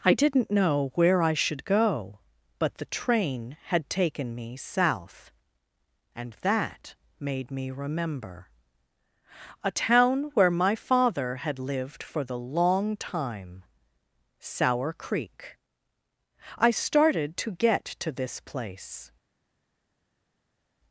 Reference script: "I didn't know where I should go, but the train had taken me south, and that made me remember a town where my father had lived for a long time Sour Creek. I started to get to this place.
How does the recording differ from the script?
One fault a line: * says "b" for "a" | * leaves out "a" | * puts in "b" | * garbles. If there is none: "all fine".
* says "the" for "a"